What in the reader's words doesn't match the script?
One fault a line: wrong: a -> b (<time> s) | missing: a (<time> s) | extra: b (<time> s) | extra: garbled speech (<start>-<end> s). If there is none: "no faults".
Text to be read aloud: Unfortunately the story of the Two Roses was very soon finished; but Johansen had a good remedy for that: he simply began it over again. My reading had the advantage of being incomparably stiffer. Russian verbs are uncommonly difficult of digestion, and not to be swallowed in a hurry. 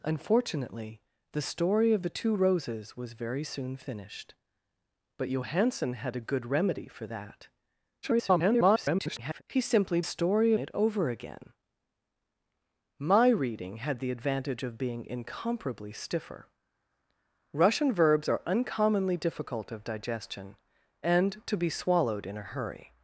extra: garbled speech (8.0-9.4 s)
wrong: began -> story (10.0 s)
missing: not (21.4 s)